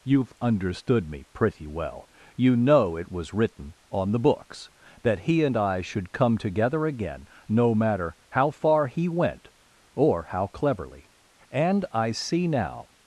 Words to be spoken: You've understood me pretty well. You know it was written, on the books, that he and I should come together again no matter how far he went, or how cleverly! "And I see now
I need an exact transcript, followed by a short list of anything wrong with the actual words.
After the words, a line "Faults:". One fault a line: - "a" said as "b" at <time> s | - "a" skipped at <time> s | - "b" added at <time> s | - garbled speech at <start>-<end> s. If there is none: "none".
You've understood me pretty well. You know it was written, on the books, that he and I should come together again no matter how far he went, or how cleverly! "And I see now
Faults:
none